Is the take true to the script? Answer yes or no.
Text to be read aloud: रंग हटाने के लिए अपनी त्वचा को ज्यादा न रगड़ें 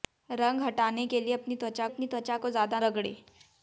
no